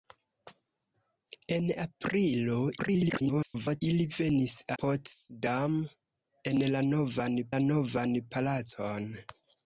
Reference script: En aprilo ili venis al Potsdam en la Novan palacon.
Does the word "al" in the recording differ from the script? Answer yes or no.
yes